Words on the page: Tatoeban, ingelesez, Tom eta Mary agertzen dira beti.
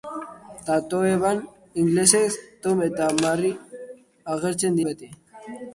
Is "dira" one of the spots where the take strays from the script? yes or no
yes